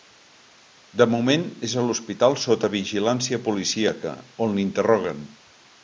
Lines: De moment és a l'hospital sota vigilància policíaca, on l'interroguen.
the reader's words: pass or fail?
pass